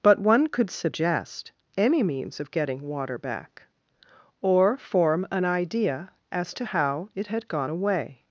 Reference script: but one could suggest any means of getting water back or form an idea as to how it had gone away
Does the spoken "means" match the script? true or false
true